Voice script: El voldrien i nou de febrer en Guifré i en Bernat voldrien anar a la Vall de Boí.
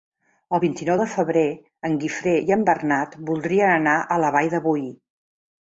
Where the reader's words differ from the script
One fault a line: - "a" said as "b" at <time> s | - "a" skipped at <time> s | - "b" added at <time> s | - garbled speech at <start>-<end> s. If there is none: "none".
- "voldrien" said as "vint" at 0.6 s